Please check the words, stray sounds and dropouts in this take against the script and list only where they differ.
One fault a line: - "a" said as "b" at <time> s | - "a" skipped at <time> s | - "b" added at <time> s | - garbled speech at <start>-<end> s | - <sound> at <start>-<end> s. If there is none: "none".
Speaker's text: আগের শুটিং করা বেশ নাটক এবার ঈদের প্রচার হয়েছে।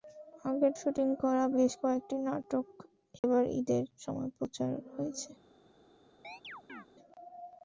- "কয়েকটি" added at 1.8 s
- dropout at 3.2-3.2 s
- "সময়" added at 4.0 s
- chirp at 6.2-6.9 s